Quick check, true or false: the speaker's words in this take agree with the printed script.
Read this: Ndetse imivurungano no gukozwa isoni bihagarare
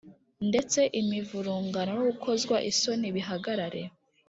true